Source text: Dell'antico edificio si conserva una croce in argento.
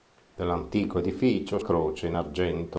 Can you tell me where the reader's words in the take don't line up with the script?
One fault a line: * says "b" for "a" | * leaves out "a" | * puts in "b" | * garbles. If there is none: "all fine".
* leaves out "si conserva una"